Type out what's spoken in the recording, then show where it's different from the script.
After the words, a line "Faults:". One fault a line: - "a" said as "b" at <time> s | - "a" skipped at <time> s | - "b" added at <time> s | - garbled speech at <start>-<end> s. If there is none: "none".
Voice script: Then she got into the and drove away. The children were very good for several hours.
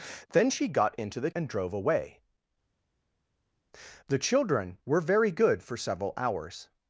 Then she got into the and drove away. The children were very good for several hours.
Faults:
none